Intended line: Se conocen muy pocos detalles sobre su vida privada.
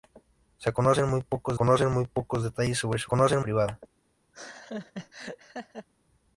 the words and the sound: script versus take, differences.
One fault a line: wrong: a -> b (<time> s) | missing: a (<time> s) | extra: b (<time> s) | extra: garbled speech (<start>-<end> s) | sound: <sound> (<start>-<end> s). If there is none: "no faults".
extra: conocen muy pocos (1.5 s)
wrong: vida -> conocen (3.1 s)
sound: laugh (4.3-5.9 s)